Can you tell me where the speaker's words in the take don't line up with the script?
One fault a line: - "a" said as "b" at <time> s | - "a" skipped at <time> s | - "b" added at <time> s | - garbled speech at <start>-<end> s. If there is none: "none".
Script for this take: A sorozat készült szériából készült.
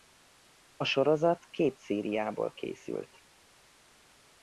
- "készült" said as "két" at 1.4 s